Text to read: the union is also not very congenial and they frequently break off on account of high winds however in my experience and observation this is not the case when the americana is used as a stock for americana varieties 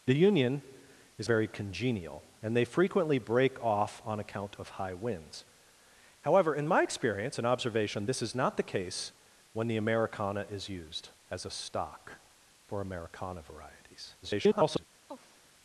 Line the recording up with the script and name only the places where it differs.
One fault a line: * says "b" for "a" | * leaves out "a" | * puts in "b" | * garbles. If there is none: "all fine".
* leaves out "also not"
* garbles